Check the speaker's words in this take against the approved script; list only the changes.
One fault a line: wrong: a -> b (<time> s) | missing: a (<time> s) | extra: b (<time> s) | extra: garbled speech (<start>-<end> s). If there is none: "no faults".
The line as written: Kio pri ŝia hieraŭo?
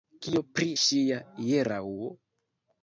no faults